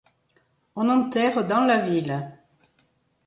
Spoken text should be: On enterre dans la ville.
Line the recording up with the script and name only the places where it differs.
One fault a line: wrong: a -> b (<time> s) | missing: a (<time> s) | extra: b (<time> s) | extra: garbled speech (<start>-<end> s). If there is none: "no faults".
no faults